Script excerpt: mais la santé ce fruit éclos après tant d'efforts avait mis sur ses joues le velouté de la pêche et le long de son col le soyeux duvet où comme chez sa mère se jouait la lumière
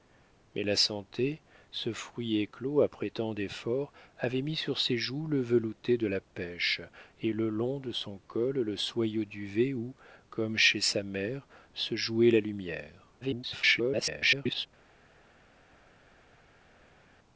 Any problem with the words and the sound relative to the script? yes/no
yes